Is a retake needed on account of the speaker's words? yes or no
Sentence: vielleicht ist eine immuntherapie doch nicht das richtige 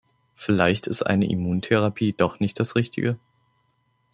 no